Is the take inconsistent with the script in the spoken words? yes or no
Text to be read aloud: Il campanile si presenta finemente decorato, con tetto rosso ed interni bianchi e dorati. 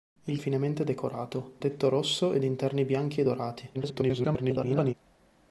yes